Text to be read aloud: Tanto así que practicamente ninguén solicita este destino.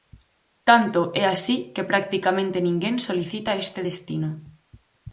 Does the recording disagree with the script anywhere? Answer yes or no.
yes